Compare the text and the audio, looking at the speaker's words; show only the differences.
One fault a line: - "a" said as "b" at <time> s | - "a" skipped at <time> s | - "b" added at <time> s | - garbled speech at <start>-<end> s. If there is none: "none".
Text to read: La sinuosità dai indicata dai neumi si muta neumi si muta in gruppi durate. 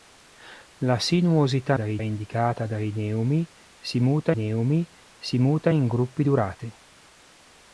none